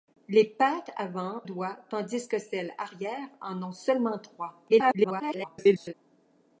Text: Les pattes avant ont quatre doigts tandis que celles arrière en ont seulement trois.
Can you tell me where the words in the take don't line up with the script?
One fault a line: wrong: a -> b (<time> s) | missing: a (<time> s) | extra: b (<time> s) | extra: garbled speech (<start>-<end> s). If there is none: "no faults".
missing: ont quatre (1.4 s)
extra: garbled speech (4.7-5.9 s)